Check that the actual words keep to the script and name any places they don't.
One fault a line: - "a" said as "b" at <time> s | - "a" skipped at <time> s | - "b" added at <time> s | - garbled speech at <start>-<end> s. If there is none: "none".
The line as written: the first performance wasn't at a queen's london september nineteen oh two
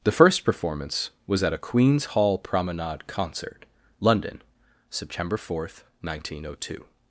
- "wasn't" said as "was" at 1.3 s
- "hall promenade concert" added at 2.0 s
- "fourth" added at 5.4 s